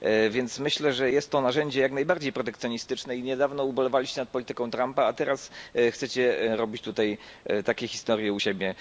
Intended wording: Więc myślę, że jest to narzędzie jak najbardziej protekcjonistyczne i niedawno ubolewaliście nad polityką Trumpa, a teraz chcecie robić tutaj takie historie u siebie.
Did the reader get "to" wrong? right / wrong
right